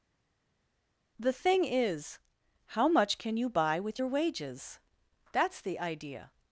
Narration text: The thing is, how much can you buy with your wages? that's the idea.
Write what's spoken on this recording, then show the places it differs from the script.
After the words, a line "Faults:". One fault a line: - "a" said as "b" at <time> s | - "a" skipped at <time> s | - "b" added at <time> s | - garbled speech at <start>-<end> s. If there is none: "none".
The thing is, how much can you buy with your wages? that's the idea.
Faults:
none